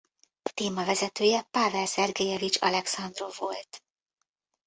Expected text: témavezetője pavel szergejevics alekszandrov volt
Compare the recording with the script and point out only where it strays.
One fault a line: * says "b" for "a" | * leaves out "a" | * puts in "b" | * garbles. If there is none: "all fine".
all fine